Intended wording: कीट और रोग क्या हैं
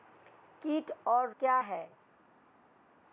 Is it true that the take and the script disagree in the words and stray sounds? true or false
true